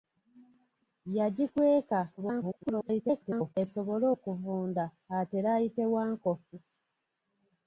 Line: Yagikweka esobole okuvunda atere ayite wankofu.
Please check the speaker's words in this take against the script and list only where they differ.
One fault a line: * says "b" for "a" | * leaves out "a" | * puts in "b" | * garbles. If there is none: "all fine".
* garbles